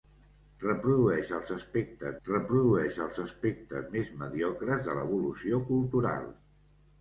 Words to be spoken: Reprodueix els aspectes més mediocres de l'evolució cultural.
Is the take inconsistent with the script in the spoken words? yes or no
yes